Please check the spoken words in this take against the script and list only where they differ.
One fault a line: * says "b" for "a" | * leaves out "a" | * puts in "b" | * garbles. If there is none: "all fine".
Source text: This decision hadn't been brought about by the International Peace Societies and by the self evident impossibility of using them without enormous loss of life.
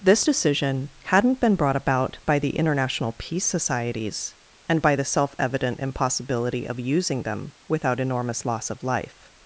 all fine